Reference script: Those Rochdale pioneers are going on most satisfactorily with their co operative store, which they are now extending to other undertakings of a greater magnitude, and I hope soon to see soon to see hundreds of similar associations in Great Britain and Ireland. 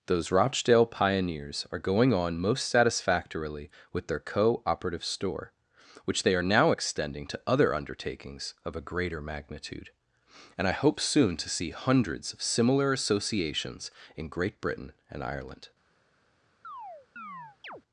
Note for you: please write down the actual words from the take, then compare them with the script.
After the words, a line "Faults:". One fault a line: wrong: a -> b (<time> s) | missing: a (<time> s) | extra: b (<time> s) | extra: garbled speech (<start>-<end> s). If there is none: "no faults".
Those Rochdale pioneers are going on most satisfactorily with their co operative store, which they are now extending to other undertakings of a greater magnitude, and I hope soon to see hundreds of similar associations in Great Britain and Ireland.
Faults:
missing: soon to see (11.7 s)